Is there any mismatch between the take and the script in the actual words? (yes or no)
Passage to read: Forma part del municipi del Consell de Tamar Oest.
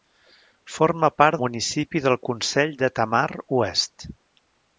yes